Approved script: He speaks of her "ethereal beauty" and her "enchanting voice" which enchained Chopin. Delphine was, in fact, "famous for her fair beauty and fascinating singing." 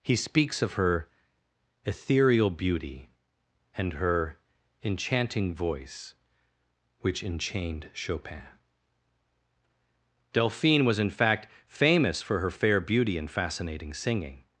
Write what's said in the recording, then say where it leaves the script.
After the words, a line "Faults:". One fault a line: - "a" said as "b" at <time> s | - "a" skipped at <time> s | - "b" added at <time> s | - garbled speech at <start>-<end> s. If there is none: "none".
He speaks of her "ethereal beauty" and her "enchanting voice" which enchained Chopin. Delphine was, in fact, "famous for her fair beauty and fascinating singing."
Faults:
none